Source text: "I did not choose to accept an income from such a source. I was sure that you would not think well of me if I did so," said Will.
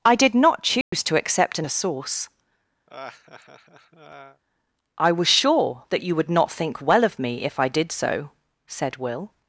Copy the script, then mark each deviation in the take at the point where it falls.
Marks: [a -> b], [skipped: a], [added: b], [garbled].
"I did not choose to accept an [skipped: income from such] a source. I was sure that you would not think well of me if I did so," said Will.